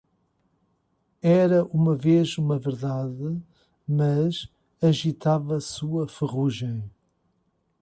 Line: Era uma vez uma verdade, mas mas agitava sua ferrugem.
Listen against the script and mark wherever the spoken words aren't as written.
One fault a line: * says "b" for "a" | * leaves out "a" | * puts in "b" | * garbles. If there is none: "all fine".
* leaves out "mas"